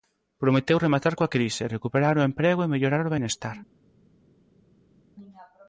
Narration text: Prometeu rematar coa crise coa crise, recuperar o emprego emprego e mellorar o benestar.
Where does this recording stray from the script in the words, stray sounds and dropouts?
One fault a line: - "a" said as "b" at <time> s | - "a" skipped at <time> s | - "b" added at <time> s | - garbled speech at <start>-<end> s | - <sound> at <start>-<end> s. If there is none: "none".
- "coa crise" skipped at 1.7 s
- "emprego" skipped at 2.6 s